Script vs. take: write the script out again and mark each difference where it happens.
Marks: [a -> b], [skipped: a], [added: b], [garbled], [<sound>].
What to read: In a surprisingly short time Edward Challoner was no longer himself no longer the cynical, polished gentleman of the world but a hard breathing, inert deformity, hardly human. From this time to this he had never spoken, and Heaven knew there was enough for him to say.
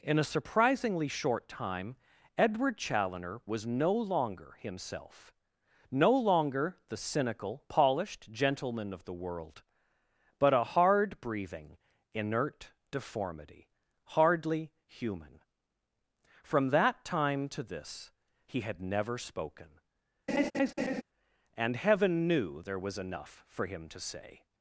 In a surprisingly short time Edward Challoner was no longer himself no longer the cynical, polished gentleman of the world but a hard breathing, inert deformity, hardly human. From [this -> that] time to this he had never spoken, [laugh] and Heaven knew there was enough for him to say.